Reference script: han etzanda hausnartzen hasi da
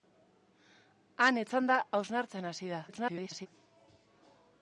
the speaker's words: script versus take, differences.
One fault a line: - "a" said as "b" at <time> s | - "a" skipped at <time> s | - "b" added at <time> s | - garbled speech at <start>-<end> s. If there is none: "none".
- garbled speech at 2.9-3.5 s